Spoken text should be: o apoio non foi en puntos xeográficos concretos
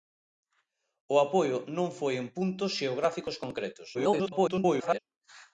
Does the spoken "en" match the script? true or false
true